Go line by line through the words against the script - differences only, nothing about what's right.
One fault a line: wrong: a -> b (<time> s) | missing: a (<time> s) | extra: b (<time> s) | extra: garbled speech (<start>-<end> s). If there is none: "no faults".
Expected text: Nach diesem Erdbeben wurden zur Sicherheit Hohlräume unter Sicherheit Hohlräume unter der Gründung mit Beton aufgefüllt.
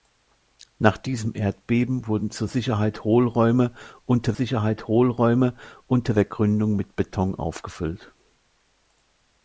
no faults